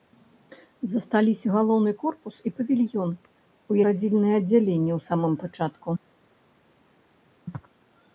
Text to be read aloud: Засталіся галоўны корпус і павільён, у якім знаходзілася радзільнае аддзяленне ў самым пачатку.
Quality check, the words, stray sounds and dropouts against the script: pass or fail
fail